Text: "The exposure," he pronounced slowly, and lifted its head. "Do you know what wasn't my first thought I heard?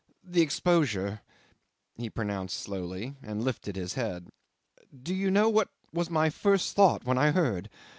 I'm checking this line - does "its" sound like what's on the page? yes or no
no